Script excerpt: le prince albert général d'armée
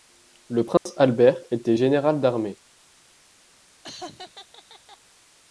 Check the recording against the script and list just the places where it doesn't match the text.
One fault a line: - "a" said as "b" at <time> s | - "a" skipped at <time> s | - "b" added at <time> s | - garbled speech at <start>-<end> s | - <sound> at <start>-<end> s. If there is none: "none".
- dropout at 0.8-0.9 s
- "était" added at 1.5 s
- laugh at 3.8-5.0 s